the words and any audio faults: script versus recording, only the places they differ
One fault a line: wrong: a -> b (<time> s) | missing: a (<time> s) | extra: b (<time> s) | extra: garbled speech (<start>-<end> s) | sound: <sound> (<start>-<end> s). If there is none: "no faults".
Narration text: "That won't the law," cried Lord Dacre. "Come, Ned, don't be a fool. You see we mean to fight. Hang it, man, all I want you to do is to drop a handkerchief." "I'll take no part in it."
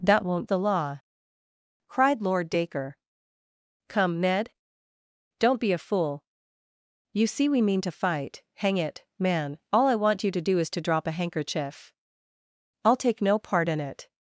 no faults